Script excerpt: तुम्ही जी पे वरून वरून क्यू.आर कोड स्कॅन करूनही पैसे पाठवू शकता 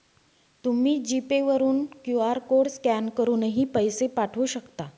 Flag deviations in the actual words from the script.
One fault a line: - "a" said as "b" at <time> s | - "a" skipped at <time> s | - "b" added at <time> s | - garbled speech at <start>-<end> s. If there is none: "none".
- "वरून" skipped at 1.9 s